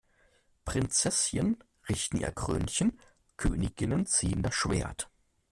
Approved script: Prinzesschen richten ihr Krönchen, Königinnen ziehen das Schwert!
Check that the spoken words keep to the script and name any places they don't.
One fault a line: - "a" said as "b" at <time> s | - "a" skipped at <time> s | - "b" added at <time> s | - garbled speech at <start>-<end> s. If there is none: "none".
none